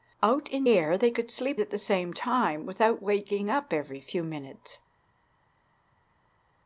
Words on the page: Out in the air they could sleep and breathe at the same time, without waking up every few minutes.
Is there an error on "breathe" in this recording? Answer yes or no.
yes